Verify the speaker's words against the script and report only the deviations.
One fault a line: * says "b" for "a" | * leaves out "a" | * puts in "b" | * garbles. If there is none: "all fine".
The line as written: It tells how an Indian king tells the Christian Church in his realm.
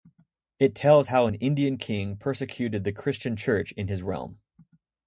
* says "persecuted" for "tells"